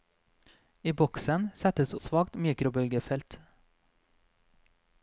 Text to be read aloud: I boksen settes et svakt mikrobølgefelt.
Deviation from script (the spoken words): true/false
false